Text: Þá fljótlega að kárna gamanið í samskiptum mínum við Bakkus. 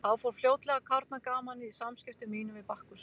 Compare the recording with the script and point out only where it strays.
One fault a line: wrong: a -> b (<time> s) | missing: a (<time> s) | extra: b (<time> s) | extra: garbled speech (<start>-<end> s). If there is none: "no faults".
extra: fór (0.2 s)